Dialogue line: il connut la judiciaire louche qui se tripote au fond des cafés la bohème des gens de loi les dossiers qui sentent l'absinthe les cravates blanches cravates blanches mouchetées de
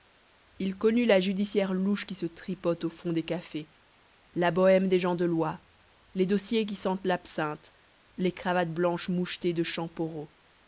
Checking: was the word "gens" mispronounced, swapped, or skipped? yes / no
no